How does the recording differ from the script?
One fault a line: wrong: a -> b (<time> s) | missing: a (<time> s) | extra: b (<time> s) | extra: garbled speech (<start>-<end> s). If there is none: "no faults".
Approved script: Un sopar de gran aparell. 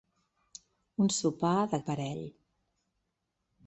missing: gran (1.8 s)